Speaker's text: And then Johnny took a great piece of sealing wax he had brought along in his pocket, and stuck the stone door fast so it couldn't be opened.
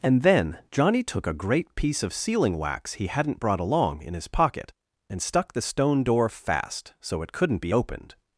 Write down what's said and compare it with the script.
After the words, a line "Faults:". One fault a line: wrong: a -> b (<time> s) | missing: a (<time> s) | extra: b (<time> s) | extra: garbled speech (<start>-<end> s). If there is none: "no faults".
And then Johnny took a great piece of sealing wax he hadn't brought along in his pocket, and stuck the stone door fast so it couldn't be opened.
Faults:
wrong: had -> hadn't (3.1 s)